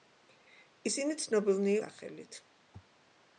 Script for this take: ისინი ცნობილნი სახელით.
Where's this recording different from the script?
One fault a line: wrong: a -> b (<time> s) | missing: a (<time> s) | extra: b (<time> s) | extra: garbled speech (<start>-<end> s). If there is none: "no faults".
no faults